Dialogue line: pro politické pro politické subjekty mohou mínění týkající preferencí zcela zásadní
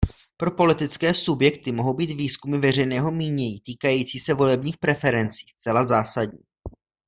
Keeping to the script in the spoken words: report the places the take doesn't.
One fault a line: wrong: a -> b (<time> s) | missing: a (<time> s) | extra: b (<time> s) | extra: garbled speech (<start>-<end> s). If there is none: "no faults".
wrong: pro politické subjekty mohou -> subjekty mohou být výzkumy veřejného (1.1 s)
extra: se volebních (4.2 s)